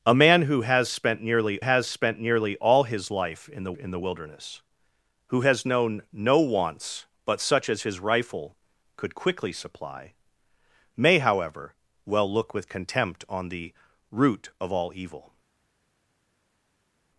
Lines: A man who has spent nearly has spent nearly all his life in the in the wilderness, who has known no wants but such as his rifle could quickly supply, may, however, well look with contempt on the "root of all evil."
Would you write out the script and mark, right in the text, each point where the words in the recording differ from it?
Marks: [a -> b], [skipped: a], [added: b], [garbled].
A man who has spent nearly has spent nearly all his life in the in the wilderness, who has known no wants but such as his rifle could quickly supply, may, however, well look with contempt on the "root of all evil."